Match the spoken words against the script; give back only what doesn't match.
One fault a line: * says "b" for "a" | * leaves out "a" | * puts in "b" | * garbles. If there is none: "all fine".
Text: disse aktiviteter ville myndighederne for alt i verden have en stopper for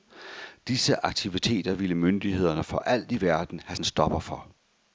all fine